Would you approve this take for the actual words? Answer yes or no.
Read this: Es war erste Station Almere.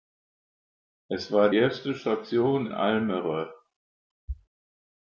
yes